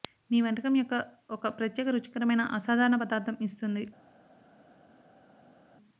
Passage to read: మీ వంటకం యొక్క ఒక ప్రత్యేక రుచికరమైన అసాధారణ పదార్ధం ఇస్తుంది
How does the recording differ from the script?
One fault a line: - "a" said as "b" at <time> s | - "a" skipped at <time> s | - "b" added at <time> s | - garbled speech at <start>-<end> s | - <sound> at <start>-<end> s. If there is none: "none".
none